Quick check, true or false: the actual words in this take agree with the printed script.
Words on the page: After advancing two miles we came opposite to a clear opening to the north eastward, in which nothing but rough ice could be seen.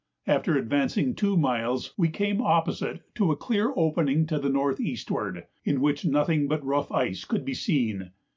true